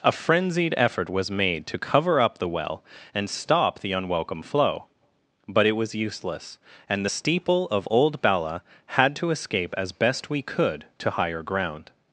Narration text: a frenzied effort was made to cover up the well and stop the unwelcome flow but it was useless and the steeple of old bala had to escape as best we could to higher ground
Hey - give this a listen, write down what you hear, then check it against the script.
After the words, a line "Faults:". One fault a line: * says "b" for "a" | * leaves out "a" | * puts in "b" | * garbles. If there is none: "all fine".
a frenzied effort was made to cover up the well and stop the unwelcome flow but it was useless and the steeple of old bala had to escape as best we could to higher ground
Faults:
all fine